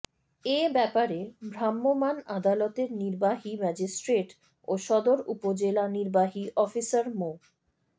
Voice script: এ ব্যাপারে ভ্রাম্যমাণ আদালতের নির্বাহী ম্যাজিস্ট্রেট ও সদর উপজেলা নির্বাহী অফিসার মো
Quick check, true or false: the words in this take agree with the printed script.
true